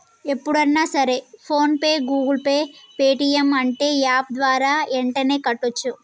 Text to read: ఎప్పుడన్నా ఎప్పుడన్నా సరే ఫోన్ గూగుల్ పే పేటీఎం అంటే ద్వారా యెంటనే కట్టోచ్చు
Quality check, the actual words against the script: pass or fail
fail